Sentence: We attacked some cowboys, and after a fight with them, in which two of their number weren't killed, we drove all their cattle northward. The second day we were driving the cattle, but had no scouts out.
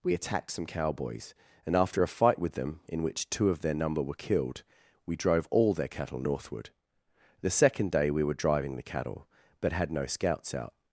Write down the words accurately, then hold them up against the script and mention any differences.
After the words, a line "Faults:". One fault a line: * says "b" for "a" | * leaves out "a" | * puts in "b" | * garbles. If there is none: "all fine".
We attacked some cowboys, and after a fight with them, in which two of their number were killed, we drove all their cattle northward. The second day we were driving the cattle, but had no scouts out.
Faults:
* says "were" for "weren't"